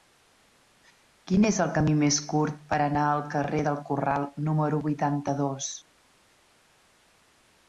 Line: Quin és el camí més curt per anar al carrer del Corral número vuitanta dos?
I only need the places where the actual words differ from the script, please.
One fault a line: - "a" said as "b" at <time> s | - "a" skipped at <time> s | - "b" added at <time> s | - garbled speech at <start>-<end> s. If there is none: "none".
none